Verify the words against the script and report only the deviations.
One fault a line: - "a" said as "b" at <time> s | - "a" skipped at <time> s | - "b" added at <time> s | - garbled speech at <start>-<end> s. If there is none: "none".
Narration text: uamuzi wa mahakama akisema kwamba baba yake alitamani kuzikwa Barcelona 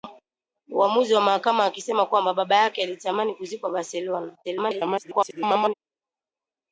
- garbled speech at 4.4-5.7 s